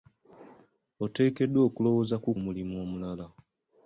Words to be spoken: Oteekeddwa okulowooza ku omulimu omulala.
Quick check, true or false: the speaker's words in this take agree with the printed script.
true